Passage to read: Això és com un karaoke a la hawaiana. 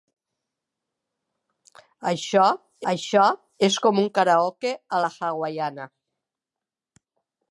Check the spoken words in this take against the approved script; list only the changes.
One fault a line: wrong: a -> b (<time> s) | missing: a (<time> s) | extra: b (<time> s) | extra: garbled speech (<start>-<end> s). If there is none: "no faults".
extra: això (2.9 s)